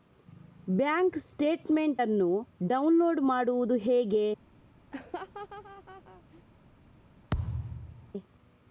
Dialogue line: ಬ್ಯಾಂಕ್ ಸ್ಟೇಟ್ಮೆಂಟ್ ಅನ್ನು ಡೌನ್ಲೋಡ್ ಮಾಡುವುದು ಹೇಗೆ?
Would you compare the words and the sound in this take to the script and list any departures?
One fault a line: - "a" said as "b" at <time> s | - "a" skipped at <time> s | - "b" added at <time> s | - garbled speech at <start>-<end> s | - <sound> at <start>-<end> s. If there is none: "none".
- laugh at 4.9-6.4 s
- thud at 7.3-8.1 s